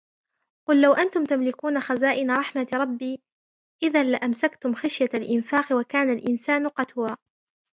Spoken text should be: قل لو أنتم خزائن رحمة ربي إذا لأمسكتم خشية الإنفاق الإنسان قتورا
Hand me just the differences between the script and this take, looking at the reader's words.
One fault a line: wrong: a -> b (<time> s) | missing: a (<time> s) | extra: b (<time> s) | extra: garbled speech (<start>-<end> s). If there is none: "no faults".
extra: تملكون (1.2 s)
extra: وكان (5.8 s)